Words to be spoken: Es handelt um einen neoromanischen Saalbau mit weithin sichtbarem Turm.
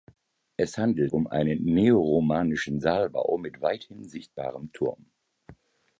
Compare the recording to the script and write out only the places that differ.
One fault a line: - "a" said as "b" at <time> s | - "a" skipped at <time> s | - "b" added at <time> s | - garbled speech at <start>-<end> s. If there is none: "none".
none